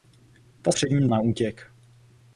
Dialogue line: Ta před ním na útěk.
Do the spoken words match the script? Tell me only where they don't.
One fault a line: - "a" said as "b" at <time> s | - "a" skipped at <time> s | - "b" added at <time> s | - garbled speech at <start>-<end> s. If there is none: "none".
none